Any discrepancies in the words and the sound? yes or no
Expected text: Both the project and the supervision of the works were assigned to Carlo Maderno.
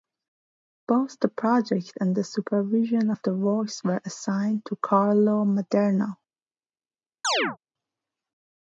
yes